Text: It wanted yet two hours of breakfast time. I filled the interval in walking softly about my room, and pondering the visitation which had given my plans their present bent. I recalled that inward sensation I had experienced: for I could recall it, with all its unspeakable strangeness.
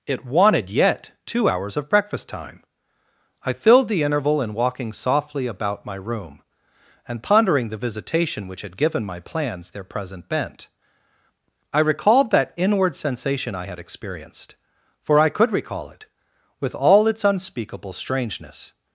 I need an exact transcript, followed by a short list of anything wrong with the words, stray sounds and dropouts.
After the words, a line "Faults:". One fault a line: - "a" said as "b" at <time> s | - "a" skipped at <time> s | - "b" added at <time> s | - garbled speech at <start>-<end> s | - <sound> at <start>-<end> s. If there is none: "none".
It wanted yet two hours of breakfast time. I filled the interval in walking softly about my room, and pondering the visitation which had given my plans their present bent. I recalled that inward sensation I had experienced: for I could recall it, with all its unspeakable strangeness.
Faults:
none